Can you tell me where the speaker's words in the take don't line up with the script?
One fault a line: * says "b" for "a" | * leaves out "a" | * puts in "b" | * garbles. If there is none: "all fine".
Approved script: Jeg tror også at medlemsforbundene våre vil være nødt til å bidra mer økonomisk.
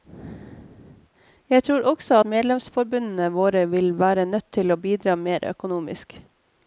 * leaves out "at"